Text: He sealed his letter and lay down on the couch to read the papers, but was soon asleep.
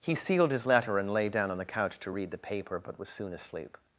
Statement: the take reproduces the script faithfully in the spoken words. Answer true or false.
false